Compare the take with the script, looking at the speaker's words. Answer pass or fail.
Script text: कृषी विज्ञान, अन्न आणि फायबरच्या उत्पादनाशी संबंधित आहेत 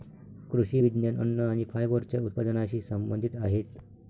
pass